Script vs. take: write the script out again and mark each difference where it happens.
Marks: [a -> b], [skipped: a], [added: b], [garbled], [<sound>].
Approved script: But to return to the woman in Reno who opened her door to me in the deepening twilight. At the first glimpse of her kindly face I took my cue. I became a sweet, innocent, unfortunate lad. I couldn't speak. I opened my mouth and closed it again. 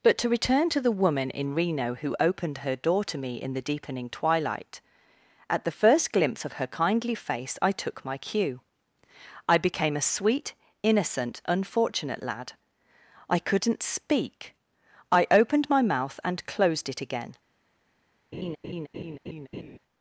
But to return to the woman in Reno who opened her door to me in the deepening twilight. At the first glimpse of her kindly face I took my cue. I became a sweet, innocent, unfortunate lad. I couldn't speak. I opened my mouth and closed it again. [laugh]